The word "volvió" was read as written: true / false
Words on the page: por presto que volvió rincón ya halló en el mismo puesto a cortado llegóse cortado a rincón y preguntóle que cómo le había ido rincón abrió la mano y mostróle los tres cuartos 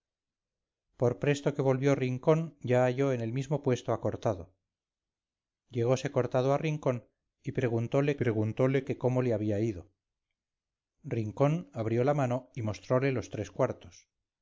true